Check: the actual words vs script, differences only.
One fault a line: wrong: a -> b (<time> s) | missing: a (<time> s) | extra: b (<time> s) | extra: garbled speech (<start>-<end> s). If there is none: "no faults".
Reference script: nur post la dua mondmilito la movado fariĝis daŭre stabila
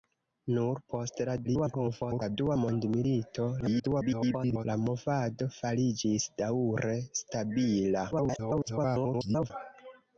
extra: garbled speech (1.4-2.4 s)
extra: garbled speech (3.6-4.7 s)
extra: garbled speech (8.1-9.5 s)